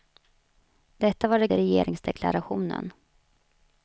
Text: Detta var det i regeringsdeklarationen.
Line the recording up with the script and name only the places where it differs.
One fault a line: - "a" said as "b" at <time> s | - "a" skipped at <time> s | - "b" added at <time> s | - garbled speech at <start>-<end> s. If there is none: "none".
none